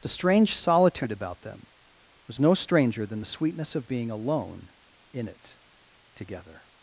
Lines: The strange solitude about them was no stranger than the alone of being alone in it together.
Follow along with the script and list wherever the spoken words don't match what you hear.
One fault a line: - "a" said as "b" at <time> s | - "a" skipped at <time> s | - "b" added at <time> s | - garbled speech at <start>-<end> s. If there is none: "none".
- "alone" said as "sweetness" at 3.2 s